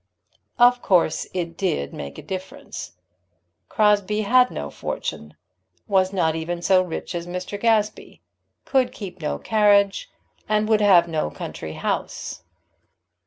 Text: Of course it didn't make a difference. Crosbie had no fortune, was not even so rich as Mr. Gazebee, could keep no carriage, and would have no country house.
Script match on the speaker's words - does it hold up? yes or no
no